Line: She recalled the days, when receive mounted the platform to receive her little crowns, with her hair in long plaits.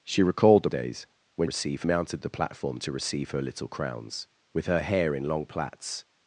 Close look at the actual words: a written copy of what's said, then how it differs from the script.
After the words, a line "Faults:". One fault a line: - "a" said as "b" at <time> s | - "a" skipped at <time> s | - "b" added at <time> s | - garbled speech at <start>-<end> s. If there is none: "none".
She recalled the days, when receive mounted the platform to receive her little crowns, with her hair in long plaits.
Faults:
none